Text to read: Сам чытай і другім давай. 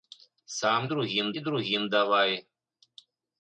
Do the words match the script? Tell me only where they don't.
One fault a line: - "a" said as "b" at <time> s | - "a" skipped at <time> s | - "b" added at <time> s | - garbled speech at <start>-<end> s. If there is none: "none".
- "чытай" said as "другім" at 0.9 s